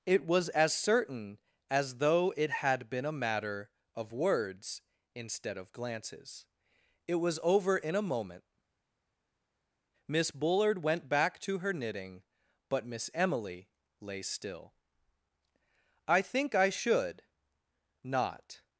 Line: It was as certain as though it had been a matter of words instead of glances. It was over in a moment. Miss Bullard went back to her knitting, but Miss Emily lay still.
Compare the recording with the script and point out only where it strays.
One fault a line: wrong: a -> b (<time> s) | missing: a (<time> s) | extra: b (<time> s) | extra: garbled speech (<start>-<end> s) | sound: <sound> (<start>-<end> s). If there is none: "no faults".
extra: I think I should not (16.1 s)